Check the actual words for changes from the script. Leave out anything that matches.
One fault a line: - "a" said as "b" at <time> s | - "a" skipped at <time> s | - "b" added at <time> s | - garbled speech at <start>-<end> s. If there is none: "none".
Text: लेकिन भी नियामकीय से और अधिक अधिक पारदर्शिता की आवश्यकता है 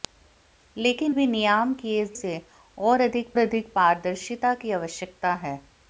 none